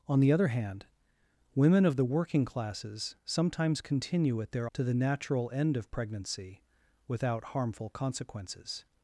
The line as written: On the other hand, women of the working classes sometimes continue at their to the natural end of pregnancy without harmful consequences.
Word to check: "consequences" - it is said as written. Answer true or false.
true